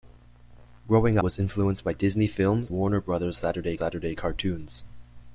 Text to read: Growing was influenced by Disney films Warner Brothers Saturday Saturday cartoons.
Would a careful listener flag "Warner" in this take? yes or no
no